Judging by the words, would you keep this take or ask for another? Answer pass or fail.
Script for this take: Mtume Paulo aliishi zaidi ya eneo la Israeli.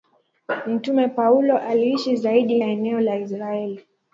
pass